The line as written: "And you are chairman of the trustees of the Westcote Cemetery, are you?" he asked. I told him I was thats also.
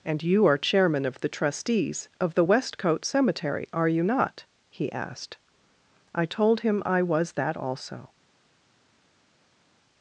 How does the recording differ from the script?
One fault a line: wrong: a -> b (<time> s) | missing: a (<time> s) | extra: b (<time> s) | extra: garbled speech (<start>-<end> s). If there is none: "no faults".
extra: not (4.0 s)
wrong: thats -> that (7.3 s)